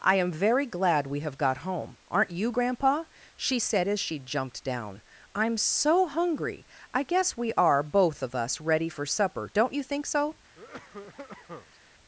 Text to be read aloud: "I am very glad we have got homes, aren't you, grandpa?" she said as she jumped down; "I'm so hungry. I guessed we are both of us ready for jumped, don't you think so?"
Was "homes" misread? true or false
true